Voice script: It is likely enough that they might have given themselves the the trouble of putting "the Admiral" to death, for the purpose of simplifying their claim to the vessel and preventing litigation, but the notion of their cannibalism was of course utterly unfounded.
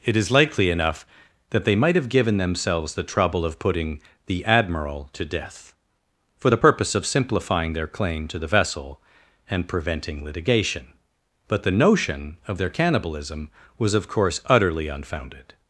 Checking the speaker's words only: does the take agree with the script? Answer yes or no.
no